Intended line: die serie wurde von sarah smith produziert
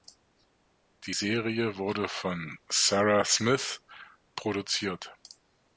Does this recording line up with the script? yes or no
yes